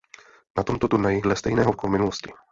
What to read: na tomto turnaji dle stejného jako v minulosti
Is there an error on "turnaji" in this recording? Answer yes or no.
no